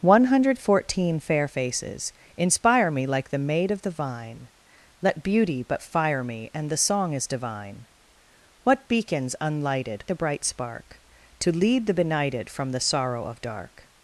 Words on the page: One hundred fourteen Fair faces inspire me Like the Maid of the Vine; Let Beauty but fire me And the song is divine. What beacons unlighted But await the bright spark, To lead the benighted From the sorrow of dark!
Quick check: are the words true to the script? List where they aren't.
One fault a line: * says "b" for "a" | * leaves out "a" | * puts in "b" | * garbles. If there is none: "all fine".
* leaves out "But await"